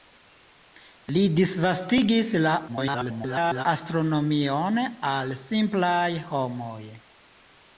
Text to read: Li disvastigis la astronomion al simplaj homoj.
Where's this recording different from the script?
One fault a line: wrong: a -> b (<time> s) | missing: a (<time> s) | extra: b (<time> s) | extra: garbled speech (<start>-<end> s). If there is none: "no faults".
extra: garbled speech (2.7-3.7 s)